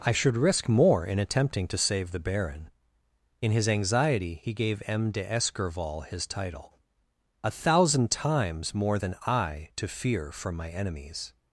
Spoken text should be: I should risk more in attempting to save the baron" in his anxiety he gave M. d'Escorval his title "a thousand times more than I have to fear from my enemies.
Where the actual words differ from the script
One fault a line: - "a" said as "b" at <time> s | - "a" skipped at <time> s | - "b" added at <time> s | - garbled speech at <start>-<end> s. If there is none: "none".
- "have" skipped at 9.7 s